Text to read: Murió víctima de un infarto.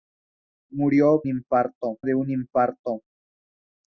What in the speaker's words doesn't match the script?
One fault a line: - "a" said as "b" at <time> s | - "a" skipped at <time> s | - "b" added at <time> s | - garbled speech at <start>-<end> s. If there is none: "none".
- "víctima" said as "infarto" at 1.3 s